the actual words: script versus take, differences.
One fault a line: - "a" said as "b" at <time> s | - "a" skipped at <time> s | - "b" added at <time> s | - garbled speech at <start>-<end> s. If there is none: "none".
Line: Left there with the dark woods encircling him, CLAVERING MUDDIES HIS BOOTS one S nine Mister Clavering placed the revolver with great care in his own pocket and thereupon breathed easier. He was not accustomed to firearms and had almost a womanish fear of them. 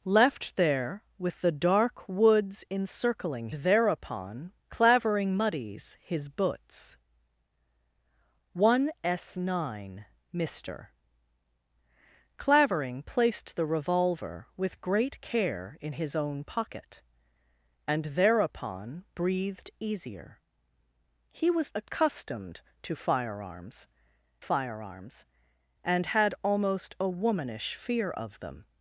- "him" said as "thereupon" at 3.5 s
- "not" skipped at 21.7 s
- "firearms" added at 24.4 s